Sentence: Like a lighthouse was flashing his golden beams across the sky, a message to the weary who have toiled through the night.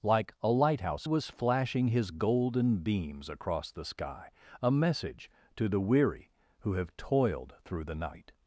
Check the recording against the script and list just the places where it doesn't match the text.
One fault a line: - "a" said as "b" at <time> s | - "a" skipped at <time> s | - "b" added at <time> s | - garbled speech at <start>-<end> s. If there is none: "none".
none